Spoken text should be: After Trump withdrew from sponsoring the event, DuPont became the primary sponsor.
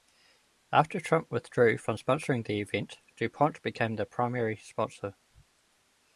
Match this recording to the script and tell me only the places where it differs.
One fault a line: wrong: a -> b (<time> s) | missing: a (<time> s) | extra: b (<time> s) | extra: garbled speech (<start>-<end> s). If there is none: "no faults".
no faults